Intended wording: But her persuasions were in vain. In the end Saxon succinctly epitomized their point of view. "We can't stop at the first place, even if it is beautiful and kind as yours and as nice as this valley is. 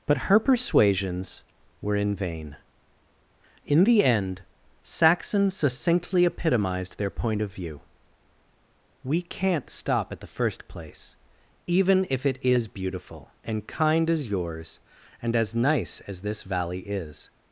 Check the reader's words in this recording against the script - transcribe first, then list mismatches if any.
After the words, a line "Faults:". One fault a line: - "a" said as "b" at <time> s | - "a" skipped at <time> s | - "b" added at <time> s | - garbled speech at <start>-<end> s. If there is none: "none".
But her persuasions were in vain. In the end Saxon succinctly epitomized their point of view. "We can't stop at the first place, even if it is beautiful and kind as yours and as nice as this valley is.
Faults:
none